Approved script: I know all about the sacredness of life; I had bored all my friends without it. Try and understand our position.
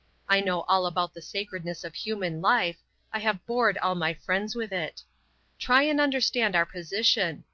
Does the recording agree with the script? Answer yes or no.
no